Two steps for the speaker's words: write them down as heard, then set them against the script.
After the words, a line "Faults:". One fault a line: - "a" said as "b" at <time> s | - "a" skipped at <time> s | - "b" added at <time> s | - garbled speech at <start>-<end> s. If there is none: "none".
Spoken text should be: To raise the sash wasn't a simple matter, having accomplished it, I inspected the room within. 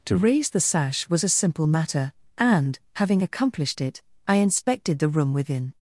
To raise the sash was a simple matter, and, having accomplished it, I inspected the room within.
Faults:
- "wasn't" said as "was" at 1.1 s
- "and" added at 2.4 s